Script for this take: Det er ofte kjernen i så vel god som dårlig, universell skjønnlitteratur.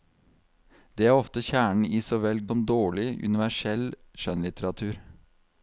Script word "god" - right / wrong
wrong